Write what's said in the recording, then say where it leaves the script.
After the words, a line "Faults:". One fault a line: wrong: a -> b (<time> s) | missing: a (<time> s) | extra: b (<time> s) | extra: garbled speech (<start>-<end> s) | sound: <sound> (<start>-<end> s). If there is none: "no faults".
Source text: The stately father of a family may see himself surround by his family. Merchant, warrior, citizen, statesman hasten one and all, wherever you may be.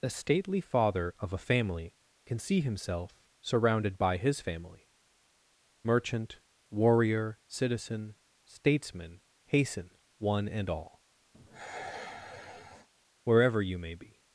The stately father of a family can see himself surrounded by his family. Merchant, warrior, citizen, statesman hasten one and all, wherever you may be.
Faults:
wrong: may -> can (2.2 s)
wrong: surround -> surrounded (3.4 s)
sound: sigh (11.3-12.9 s)